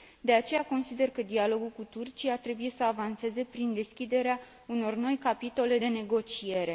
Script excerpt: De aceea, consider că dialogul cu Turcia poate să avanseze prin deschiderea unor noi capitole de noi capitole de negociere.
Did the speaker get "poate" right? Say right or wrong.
wrong